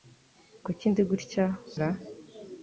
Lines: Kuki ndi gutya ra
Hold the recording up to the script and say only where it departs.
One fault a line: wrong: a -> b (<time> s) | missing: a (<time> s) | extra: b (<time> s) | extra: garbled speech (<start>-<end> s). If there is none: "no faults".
no faults